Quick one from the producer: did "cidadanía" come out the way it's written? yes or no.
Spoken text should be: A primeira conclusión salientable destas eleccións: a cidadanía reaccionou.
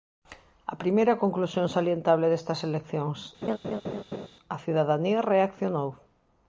yes